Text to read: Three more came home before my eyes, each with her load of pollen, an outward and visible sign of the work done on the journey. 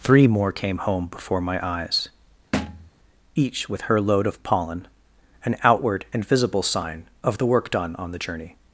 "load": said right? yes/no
yes